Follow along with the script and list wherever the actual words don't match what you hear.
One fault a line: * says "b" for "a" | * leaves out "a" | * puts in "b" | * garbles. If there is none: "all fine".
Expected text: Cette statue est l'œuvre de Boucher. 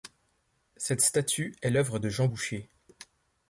* puts in "Jean"